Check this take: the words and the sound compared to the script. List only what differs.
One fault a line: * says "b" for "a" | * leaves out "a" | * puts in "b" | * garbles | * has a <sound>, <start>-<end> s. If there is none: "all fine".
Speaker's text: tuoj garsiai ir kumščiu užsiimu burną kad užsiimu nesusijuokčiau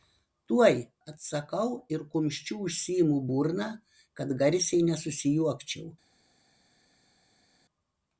* says "atsakau" for "garsiai"
* says "garsiai" for "užsiimu"